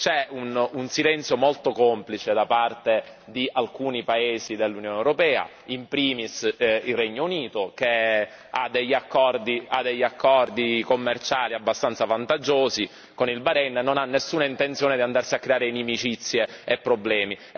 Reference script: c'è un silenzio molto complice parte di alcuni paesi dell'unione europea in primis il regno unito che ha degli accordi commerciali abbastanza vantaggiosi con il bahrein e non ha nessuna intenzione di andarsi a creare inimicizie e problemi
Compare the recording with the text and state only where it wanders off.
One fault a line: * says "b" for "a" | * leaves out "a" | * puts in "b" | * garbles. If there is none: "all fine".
* puts in "da"